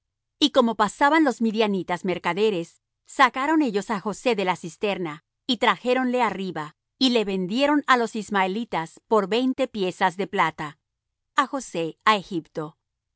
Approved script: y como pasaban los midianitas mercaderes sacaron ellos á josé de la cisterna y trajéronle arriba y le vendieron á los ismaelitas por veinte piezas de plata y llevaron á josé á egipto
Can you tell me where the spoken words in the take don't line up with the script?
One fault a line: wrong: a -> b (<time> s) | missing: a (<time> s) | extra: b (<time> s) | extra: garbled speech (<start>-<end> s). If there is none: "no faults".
missing: y llevaron (10.8 s)